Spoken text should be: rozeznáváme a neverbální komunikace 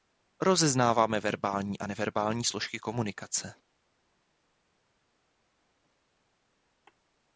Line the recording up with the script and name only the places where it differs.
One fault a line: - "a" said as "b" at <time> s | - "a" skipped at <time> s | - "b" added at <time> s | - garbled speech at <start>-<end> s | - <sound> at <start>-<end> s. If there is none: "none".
- "verbální" added at 1.2 s
- "složky" added at 2.4 s